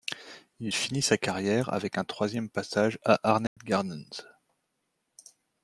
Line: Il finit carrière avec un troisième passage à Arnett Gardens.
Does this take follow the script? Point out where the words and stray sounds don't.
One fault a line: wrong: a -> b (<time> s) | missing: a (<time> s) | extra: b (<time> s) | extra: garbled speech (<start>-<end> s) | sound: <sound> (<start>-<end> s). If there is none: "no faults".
extra: sa (1.0 s)
sound: dropout (3.5-3.6 s)